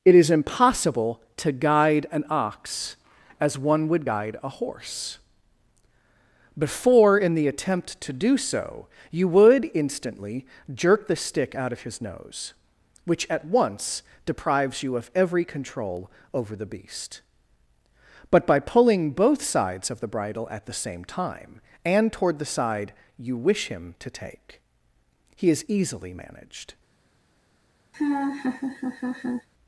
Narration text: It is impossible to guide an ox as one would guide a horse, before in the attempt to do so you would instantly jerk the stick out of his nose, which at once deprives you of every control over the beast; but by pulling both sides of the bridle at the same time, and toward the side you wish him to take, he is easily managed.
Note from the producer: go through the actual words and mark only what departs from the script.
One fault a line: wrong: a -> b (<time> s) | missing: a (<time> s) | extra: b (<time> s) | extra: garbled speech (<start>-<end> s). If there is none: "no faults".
no faults